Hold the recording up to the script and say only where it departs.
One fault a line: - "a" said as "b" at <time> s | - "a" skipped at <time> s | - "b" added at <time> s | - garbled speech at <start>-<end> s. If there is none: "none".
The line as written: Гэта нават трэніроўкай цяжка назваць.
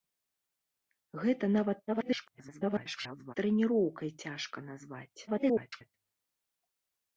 - garbled speech at 1.9-3.3 s
- garbled speech at 5.3-5.9 s